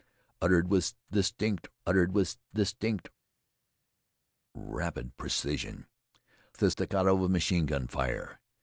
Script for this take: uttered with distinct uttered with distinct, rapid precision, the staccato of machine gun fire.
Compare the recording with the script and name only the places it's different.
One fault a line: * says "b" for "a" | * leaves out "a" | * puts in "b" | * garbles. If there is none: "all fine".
all fine